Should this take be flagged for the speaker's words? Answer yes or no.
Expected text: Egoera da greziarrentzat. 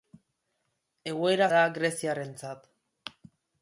no